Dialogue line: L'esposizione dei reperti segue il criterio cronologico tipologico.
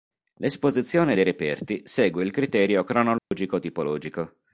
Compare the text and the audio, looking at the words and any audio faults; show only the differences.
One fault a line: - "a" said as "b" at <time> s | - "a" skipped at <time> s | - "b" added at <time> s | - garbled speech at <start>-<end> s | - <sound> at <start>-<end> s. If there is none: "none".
- dropout at 3.2-3.3 s